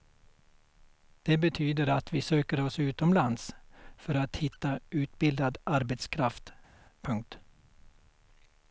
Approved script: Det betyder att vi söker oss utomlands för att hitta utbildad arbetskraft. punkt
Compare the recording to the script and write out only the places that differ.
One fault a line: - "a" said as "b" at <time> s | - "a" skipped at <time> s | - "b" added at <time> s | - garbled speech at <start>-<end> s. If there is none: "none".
none